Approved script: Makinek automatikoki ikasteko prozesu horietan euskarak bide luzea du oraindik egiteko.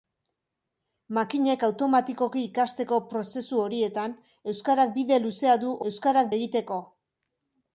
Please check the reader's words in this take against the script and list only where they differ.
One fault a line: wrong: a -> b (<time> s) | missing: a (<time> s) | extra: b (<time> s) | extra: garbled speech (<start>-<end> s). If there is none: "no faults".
wrong: oraindik -> euskarak (5.9 s)